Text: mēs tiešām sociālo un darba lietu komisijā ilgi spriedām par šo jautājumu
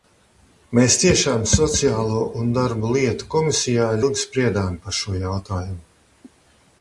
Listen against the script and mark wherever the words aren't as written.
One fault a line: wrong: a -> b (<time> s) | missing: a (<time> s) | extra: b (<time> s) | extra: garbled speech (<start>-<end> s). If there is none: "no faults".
no faults